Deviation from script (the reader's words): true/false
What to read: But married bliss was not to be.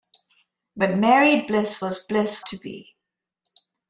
true